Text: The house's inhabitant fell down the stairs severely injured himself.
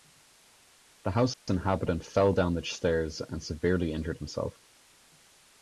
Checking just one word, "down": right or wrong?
right